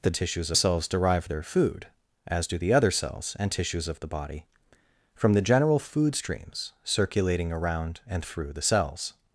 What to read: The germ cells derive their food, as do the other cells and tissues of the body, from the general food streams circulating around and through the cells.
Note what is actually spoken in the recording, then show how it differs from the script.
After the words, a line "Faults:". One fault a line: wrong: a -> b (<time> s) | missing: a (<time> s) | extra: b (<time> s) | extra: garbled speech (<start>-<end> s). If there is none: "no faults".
The tissues cells derive their food, as do the other cells and tissues of the body, from the general food streams circulating around and through the cells.
Faults:
wrong: germ -> tissues (0.1 s)